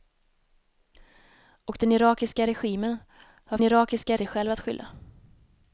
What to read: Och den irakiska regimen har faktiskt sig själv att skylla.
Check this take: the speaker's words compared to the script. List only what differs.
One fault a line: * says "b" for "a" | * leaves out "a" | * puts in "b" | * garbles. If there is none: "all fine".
* says "irakiska" for "faktiskt"